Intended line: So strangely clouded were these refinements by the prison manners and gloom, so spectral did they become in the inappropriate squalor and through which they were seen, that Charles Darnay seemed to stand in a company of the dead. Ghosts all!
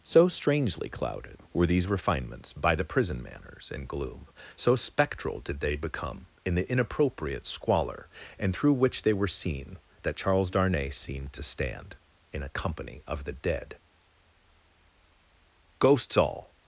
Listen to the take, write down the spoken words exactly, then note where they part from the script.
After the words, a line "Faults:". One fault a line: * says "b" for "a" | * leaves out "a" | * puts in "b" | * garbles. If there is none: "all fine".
So strangely clouded were these refinements by the prison manners and gloom, so spectral did they become in the inappropriate squalor and through which they were seen, that Charles Darnay seemed to stand in a company of the dead. Ghosts all!
Faults:
all fine